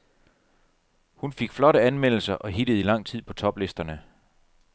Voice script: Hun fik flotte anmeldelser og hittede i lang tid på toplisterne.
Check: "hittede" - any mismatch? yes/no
no